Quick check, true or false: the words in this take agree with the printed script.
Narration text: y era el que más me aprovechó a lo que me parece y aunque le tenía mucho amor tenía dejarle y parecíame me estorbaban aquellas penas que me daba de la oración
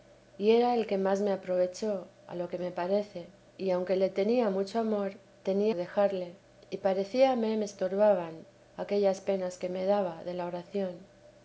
true